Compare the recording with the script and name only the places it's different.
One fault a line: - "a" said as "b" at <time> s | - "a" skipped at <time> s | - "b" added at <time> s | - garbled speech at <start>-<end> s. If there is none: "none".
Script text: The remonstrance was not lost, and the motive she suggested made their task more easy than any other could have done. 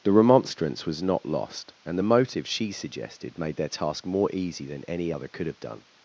none